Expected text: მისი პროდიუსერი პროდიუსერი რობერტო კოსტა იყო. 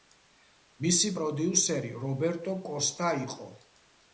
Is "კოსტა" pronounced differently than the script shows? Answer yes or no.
no